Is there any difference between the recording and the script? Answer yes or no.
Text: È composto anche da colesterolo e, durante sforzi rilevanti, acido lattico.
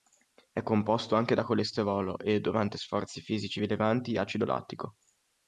yes